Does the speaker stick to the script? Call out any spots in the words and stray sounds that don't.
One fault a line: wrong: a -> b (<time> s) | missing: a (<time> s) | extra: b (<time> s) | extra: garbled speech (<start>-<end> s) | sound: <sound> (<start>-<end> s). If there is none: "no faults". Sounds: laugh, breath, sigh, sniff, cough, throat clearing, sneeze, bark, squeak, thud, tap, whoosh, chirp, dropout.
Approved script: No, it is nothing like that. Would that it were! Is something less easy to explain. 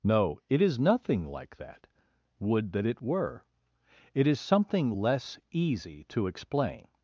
extra: It (4.1 s)